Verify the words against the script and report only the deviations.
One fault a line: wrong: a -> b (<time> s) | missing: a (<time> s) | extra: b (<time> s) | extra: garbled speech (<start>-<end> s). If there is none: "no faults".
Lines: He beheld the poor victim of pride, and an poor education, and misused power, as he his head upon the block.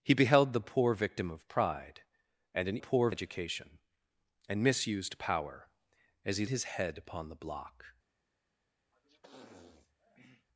no faults